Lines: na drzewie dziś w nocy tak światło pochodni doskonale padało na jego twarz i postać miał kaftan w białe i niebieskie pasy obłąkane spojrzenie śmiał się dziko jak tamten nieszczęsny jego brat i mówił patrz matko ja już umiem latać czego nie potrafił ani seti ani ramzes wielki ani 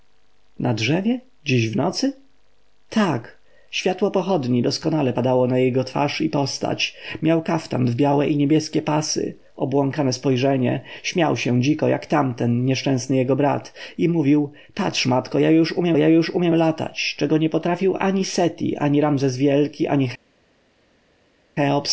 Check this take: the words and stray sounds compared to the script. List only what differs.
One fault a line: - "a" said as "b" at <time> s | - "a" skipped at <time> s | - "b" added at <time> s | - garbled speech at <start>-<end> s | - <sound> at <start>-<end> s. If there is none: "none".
- "ja już umiem" added at 16.0 s